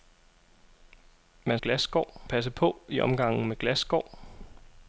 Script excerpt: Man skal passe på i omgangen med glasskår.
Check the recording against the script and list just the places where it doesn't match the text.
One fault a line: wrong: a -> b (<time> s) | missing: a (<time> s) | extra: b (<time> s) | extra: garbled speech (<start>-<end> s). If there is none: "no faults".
wrong: skal -> glasskår (1.6 s)